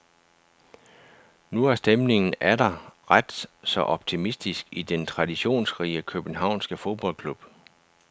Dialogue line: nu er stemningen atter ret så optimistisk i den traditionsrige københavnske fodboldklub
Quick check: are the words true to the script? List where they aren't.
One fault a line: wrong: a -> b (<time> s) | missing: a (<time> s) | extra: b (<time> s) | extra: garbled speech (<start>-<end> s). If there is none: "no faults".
no faults